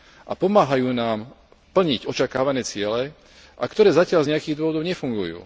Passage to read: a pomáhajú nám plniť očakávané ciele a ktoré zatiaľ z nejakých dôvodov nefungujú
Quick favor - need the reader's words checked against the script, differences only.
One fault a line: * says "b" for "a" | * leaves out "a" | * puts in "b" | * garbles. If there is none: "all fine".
all fine